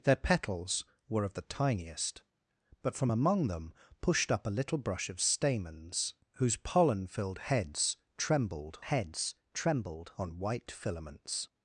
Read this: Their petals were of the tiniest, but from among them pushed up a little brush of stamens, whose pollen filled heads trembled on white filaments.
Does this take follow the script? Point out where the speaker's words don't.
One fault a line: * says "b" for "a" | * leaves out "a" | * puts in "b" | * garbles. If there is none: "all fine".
* puts in "heads trembled"